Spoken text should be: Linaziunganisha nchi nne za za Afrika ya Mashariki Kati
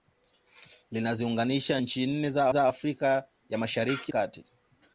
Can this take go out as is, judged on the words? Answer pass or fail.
pass